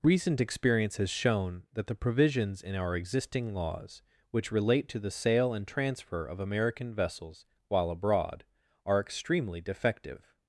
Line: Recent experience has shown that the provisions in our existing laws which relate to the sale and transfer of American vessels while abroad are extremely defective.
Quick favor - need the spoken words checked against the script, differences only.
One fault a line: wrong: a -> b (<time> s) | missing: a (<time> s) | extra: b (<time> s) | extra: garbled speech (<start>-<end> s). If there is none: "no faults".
no faults